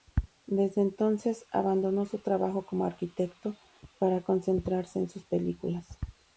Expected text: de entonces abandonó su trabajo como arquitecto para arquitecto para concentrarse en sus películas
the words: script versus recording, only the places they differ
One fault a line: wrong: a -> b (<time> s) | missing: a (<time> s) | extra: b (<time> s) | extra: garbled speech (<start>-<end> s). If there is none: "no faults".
wrong: de -> desde (0.5 s)
missing: arquitecto para (4.2 s)